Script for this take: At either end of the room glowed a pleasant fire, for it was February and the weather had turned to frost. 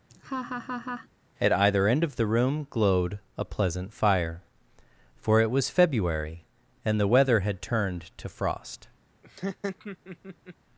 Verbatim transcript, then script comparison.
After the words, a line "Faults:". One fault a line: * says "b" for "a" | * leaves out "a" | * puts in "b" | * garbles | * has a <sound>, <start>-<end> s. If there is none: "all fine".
At either end of the room glowed a pleasant fire, for it was February and the weather had turned to frost.
Faults:
* has a laugh, 0.1-1.1 s
* has a laugh, 9.2-10.6 s